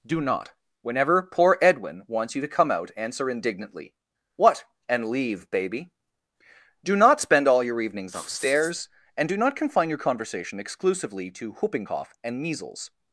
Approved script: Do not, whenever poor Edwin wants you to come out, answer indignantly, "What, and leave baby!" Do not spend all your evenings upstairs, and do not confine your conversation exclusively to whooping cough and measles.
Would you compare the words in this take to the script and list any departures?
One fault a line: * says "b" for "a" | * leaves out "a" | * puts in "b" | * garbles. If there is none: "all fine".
all fine